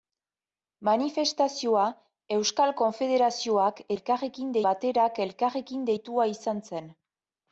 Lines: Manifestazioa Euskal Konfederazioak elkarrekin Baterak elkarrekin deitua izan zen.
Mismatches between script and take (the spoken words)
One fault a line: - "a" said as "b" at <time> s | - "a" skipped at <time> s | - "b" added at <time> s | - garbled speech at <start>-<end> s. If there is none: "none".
none